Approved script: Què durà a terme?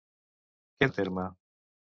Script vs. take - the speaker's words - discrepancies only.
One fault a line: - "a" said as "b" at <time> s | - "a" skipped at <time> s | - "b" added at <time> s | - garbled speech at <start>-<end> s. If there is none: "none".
- "durà" skipped at 0.9 s